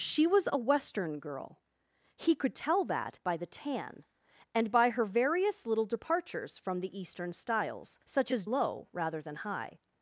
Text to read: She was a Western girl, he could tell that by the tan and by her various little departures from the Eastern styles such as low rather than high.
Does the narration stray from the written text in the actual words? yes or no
no